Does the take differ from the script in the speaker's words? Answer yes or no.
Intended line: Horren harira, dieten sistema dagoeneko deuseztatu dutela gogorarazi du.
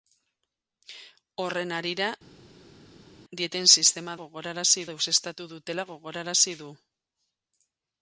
yes